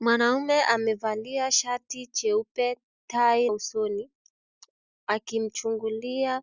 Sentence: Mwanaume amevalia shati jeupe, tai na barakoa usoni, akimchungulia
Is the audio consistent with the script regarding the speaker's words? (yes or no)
no